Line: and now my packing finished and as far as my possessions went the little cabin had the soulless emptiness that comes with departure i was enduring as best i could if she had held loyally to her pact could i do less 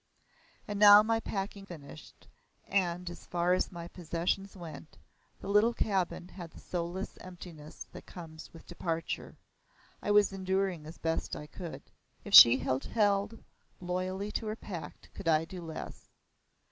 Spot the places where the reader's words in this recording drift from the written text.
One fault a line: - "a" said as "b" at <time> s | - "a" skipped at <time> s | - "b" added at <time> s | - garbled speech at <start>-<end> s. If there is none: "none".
none